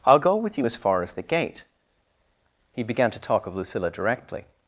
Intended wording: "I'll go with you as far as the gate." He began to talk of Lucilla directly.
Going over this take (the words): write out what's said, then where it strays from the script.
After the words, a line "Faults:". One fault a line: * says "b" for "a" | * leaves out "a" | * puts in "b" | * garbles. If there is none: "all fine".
"I'll go with you as far as the gate." He began to talk of Lucilla directly.
Faults:
all fine